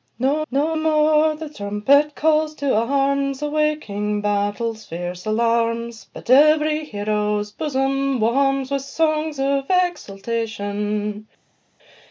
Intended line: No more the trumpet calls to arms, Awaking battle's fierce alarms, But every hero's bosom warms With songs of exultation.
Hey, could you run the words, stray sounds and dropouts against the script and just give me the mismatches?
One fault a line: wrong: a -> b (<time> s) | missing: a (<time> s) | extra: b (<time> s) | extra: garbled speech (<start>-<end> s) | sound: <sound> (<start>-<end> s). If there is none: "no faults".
extra: no (0.5 s)